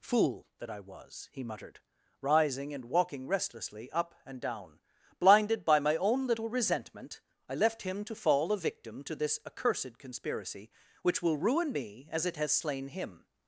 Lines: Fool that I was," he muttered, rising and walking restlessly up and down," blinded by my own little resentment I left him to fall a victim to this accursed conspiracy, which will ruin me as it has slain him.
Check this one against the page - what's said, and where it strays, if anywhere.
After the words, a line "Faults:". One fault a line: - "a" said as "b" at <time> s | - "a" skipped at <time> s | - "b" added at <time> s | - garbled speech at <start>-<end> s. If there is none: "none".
Fool that I was," he muttered, rising and walking restlessly up and down," blinded by my own little resentment I left him to fall a victim to this accursed conspiracy, which will ruin me as it has slain him.
Faults:
none